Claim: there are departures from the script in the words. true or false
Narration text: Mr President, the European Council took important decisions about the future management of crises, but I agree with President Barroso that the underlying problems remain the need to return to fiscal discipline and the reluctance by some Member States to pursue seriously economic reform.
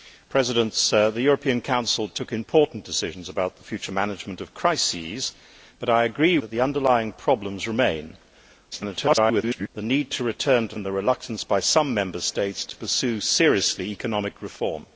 true